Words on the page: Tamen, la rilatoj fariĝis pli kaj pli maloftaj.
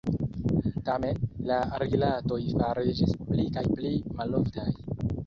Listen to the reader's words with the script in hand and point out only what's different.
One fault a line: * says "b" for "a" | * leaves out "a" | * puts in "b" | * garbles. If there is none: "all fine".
all fine